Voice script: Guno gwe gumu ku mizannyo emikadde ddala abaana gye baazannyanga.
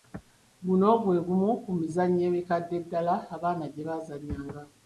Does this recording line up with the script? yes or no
yes